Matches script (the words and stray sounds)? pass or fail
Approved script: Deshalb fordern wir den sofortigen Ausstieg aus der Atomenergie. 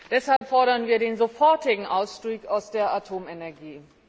fail